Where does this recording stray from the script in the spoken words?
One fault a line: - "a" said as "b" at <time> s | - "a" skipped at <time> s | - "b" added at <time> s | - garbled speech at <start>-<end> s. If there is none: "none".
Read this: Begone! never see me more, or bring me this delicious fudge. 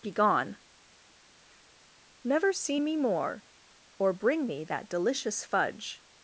- "this" said as "that" at 4.6 s